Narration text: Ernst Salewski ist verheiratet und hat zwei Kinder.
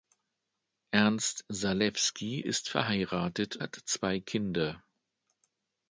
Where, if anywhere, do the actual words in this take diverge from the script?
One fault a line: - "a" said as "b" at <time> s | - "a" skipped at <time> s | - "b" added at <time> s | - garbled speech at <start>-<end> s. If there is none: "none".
- "und" skipped at 3.6 s